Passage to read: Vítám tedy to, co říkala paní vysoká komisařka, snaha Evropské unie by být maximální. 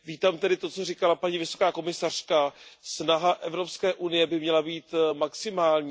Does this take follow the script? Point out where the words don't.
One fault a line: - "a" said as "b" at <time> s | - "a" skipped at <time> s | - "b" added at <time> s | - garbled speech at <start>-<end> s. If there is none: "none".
- "měla" added at 4.4 s